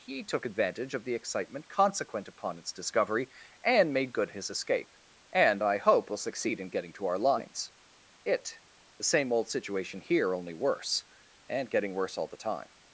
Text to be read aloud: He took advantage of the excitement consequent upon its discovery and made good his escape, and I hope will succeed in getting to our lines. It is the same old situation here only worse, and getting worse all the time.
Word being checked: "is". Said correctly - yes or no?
no